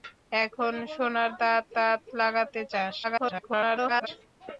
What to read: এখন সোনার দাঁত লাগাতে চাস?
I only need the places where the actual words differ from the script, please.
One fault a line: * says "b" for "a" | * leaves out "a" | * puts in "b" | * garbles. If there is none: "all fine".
* puts in "দাঁত"
* garbles